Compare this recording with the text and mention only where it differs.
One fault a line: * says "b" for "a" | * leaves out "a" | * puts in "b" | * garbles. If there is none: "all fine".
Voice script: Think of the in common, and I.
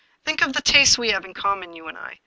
* puts in "tastes we have"
* puts in "you"